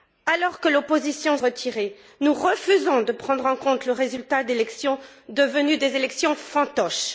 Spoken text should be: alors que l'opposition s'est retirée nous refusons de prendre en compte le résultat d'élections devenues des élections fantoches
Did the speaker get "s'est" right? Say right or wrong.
wrong